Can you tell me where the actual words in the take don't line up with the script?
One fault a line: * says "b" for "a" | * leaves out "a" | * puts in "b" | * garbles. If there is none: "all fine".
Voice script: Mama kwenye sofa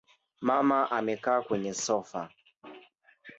* puts in "amekaa"